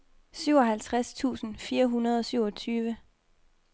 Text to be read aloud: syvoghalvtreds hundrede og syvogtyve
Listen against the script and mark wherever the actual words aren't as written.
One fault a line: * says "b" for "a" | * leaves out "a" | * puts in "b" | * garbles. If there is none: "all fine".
* puts in "tusind fire"